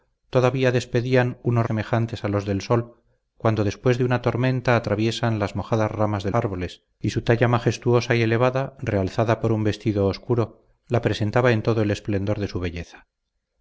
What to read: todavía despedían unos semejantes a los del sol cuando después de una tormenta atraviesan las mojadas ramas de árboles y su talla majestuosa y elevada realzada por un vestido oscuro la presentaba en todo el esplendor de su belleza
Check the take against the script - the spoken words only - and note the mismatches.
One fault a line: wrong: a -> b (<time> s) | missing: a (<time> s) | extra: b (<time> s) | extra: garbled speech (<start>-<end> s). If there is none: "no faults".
no faults